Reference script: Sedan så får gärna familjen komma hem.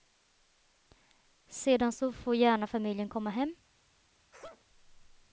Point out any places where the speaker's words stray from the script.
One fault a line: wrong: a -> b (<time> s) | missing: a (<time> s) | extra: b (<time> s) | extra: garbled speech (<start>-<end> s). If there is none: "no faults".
no faults